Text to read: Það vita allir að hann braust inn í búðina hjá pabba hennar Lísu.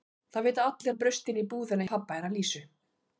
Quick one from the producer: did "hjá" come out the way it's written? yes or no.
no